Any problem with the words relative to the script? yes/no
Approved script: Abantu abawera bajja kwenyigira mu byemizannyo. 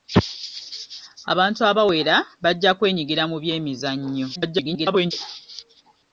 yes